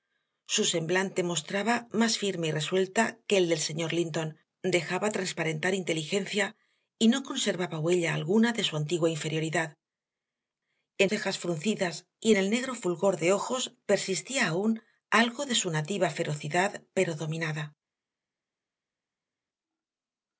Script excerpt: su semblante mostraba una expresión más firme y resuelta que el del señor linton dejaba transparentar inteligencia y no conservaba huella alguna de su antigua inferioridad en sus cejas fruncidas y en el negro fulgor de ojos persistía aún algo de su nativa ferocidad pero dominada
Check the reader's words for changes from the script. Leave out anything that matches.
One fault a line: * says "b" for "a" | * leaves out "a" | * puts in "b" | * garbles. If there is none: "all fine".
* leaves out "una expresión"
* leaves out "sus"